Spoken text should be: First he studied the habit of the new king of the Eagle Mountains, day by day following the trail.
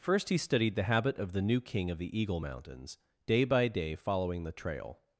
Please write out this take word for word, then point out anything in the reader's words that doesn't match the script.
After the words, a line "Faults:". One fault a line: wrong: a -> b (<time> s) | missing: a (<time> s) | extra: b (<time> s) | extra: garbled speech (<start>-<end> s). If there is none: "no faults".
First he studied the habit of the new king of the Eagle Mountains, day by day following the trail.
Faults:
no faults